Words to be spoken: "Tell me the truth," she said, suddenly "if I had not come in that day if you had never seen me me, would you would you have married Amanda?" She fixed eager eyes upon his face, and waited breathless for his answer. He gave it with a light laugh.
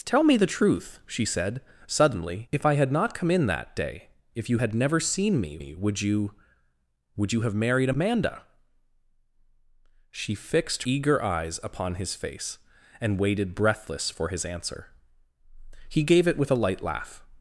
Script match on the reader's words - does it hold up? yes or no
yes